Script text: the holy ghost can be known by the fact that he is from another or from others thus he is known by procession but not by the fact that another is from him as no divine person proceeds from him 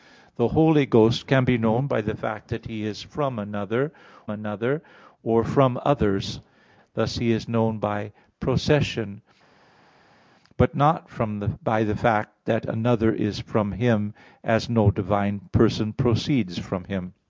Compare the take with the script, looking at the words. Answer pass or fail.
fail